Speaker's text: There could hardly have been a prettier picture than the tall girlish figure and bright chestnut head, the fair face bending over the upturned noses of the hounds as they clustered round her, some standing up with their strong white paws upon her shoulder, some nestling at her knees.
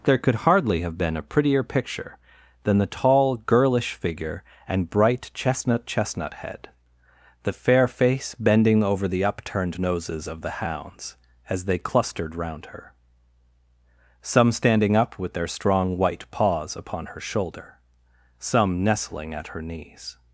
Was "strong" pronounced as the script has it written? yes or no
yes